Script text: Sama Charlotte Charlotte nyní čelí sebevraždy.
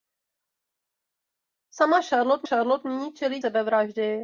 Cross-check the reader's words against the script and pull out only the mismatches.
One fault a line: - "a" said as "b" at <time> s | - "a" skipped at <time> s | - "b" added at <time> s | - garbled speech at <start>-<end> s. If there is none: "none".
none